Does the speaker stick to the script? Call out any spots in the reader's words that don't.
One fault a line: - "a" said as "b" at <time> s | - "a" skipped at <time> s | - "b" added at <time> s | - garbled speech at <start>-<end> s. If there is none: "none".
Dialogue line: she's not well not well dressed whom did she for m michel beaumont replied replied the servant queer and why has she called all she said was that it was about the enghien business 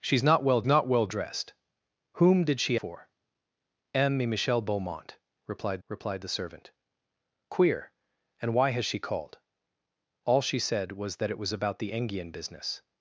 none